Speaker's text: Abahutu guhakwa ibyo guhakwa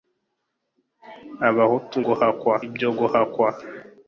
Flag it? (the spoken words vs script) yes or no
no